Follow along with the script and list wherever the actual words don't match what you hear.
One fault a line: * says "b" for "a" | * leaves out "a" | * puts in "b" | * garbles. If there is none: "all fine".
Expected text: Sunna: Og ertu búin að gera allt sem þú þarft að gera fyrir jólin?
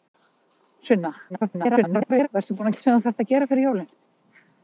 * garbles
* leaves out "að gera"